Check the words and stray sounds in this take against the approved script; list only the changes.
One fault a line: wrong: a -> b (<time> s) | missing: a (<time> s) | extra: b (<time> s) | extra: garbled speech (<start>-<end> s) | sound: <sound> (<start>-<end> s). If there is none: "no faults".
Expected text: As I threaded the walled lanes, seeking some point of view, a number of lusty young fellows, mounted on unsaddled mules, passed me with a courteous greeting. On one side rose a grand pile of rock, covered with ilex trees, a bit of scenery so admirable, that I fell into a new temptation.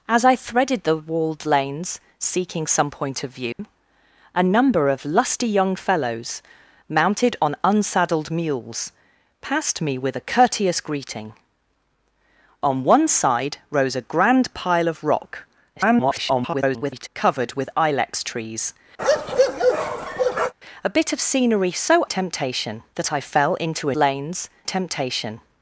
sound: dropout (3.5-3.6 s)
extra: garbled speech (15.8-17.1 s)
sound: bark (19.0-20.5 s)
wrong: admirable -> temptation (22.0 s)
wrong: new -> lanes (23.9 s)